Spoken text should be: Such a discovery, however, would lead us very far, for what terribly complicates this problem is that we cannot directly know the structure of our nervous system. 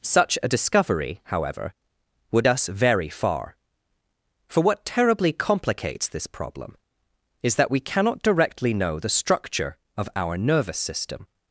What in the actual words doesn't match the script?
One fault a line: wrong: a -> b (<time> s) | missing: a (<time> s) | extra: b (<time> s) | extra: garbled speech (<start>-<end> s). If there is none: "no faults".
missing: lead (2.5 s)